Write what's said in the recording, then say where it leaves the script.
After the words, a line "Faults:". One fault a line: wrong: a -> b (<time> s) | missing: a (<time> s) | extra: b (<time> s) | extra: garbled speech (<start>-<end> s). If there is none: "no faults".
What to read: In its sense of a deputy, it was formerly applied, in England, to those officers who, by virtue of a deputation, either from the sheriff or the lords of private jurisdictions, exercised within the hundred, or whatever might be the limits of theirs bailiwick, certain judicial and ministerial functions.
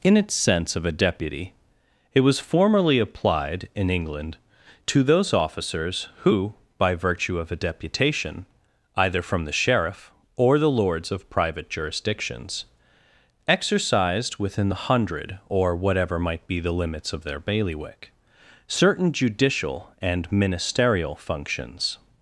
In its sense of a deputy, it was formerly applied, in England, to those officers who, by virtue of a deputation, either from the sheriff or the lords of private jurisdictions, exercised within the hundred, or whatever might be the limits of their bailiwick, certain judicial and ministerial functions.
Faults:
wrong: theirs -> their (17.2 s)